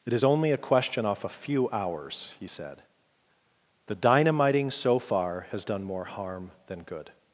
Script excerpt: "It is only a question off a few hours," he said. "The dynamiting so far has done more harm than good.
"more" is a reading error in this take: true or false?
false